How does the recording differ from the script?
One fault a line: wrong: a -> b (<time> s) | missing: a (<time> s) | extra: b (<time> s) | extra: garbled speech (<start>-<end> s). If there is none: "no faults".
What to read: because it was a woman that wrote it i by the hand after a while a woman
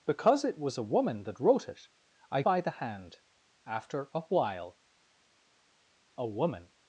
no faults